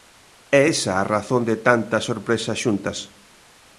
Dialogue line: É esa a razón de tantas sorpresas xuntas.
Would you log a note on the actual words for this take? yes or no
no